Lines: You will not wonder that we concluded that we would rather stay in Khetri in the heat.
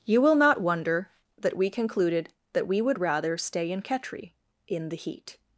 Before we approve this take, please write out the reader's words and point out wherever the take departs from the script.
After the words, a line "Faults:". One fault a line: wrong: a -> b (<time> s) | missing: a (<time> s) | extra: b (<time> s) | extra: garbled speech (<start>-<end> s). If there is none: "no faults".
You will not wonder that we concluded that we would rather stay in Khetri in the heat.
Faults:
no faults